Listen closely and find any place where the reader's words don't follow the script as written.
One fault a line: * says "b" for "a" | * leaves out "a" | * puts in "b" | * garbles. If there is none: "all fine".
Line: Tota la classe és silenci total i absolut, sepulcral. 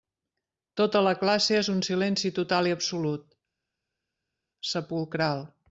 * puts in "un"